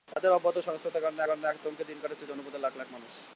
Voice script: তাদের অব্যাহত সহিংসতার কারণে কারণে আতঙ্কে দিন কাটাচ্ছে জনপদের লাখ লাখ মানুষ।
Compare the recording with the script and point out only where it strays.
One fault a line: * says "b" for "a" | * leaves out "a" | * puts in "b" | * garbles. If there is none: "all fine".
all fine